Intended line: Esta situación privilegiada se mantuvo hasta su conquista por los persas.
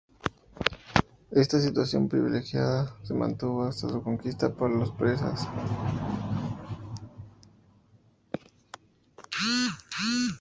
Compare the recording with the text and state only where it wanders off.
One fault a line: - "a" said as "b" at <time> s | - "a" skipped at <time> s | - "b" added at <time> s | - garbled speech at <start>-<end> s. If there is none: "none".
none